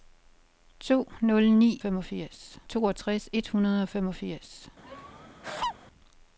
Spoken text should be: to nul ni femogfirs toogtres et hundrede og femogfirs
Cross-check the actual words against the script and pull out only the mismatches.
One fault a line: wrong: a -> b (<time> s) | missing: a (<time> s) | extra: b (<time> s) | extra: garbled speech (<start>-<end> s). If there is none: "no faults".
no faults